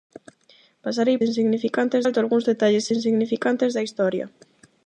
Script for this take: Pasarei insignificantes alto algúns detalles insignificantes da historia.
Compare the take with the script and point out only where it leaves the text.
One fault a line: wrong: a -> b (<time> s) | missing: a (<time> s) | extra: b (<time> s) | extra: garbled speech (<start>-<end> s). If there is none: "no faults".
no faults